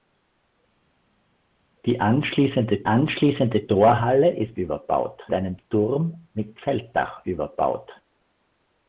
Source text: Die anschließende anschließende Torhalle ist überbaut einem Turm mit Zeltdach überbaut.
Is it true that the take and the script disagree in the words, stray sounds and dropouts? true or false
false